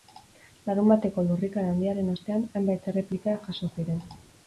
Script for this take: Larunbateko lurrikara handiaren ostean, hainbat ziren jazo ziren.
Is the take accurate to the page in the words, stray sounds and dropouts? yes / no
no